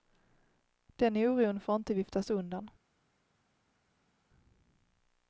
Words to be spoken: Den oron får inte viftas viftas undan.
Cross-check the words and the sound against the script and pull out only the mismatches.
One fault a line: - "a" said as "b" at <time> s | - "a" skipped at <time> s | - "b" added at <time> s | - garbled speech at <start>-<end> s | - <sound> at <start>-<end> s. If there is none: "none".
- "viftas" skipped at 2.3 s